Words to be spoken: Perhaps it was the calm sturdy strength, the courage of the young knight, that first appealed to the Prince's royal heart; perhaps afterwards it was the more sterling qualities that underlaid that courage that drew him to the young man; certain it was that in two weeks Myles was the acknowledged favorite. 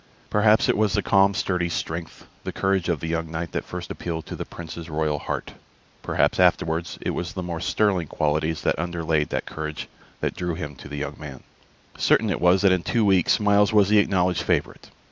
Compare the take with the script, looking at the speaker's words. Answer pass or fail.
pass